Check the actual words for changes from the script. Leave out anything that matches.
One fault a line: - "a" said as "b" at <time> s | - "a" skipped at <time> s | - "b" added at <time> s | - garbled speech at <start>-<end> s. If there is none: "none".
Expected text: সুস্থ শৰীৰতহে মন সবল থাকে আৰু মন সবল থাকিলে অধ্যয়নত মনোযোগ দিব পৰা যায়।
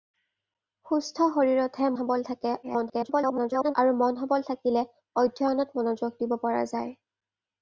- "মন" skipped at 1.9 s
- garbled speech at 2.6-3.7 s